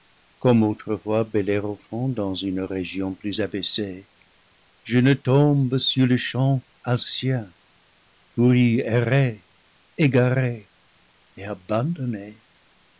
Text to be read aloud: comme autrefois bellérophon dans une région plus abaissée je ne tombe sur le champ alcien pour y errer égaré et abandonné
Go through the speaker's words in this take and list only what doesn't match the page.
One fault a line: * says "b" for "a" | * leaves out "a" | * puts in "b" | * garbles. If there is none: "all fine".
all fine